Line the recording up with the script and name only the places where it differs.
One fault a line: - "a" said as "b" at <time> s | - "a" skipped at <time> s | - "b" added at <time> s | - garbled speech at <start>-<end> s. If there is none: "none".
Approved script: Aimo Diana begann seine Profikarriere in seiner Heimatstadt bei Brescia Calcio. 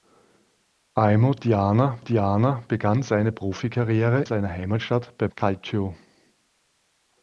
- "Diana" added at 2.0 s
- "in" skipped at 4.2 s
- "Brescia" skipped at 5.3 s